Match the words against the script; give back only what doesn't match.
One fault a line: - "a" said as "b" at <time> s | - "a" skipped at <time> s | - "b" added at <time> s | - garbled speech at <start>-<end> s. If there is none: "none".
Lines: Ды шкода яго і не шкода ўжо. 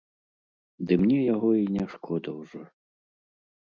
- "шкода" said as "мне" at 1.0 s